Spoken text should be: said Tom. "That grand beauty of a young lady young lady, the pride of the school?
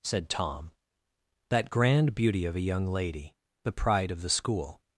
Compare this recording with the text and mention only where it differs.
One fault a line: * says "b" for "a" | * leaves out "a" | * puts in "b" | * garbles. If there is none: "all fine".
* leaves out "young lady"